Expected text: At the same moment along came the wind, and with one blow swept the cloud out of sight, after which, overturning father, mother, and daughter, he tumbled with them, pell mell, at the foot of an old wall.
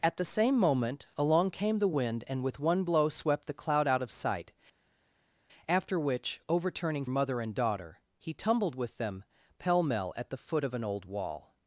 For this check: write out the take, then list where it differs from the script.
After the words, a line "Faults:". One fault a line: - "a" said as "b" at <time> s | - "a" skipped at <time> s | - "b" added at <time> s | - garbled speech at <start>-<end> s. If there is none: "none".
At the same moment along came the wind, and with one blow swept the cloud out of sight, after which, overturning mother, and daughter, he tumbled with them, pell mell, at the foot of an old wall.
Faults:
- "father" skipped at 7.0 s